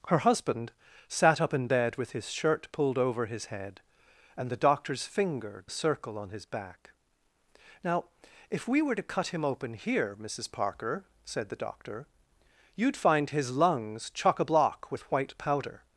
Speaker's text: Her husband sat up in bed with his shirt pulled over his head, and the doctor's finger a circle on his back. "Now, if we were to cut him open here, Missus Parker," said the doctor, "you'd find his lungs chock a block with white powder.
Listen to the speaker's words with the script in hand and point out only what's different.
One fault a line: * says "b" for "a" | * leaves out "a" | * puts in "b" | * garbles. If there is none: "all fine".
all fine